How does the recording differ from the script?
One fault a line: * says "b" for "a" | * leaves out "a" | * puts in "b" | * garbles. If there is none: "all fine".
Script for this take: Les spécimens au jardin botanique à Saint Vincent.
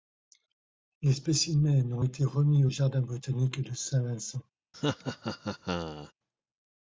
* puts in "ont été remis"
* says "de" for "à"